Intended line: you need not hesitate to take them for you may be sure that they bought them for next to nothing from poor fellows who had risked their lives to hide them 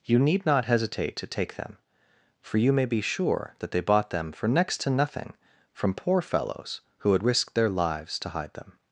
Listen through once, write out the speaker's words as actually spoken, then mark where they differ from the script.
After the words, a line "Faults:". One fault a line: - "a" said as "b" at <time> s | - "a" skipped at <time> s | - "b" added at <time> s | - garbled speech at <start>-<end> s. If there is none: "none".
you need not hesitate to take them for you may be sure that they bought them for next to nothing from poor fellows who had risked their lives to hide them
Faults:
none